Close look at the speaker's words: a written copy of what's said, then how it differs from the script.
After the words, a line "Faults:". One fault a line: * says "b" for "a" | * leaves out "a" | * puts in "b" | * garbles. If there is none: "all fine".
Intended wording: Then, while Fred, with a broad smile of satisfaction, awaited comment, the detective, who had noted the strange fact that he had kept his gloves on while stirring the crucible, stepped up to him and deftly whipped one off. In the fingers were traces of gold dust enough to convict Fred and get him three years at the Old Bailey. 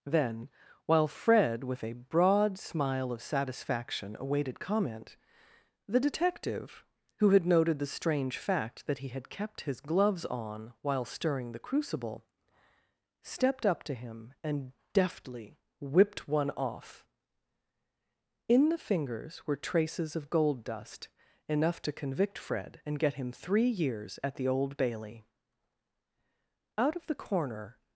Then, while Fred, with a broad smile of satisfaction, awaited comment, the detective, who had noted the strange fact that he had kept his gloves on while stirring the crucible, stepped up to him and deftly whipped one off. In the fingers were traces of gold dust enough to convict Fred and get him three years at the Old Bailey. Out of the corner
Faults:
* puts in "Out of the corner"